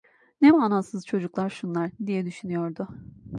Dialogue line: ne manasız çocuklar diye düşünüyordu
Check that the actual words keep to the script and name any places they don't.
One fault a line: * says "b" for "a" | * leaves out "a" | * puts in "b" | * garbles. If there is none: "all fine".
* puts in "şunlar"